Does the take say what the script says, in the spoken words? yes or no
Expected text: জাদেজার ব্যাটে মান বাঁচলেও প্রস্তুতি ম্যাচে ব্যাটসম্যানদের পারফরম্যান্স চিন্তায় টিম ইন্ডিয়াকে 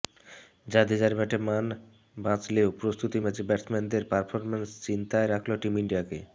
no